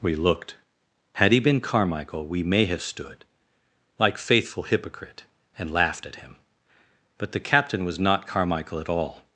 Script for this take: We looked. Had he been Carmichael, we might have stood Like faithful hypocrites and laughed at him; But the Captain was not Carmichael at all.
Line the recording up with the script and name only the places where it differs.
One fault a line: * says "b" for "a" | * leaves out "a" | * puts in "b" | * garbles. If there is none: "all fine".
* says "may" for "might"
* says "hypocrite" for "hypocrites"